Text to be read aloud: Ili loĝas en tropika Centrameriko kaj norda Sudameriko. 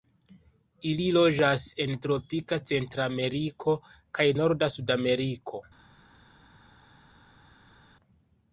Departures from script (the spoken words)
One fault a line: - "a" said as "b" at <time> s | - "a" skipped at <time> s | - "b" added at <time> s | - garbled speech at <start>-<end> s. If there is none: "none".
none